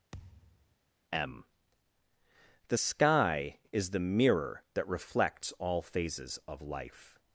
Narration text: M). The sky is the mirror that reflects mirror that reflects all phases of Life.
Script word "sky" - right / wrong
right